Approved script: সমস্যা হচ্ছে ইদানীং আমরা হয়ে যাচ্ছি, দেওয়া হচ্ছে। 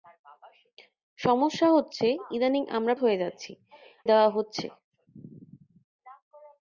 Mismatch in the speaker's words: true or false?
false